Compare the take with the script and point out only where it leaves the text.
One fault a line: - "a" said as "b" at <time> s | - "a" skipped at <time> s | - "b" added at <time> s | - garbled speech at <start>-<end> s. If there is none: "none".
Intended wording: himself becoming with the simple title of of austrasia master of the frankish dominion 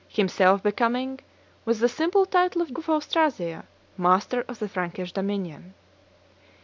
none